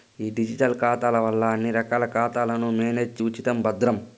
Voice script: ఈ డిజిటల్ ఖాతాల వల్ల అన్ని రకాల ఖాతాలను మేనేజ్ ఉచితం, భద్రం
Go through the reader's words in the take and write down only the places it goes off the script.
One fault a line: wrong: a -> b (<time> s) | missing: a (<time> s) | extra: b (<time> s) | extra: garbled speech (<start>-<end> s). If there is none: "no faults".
no faults